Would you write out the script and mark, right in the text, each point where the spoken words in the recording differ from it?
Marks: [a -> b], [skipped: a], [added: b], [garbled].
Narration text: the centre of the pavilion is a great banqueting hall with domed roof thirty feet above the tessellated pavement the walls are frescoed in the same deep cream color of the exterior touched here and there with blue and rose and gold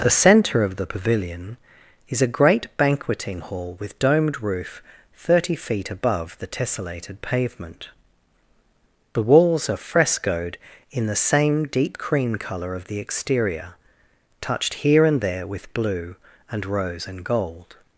the centre of the pavilion is a great banqueting hall with domed roof thirty feet above the tessellated pavement the walls are frescoed in the same deep cream color of the exterior touched here and there with blue and rose and gold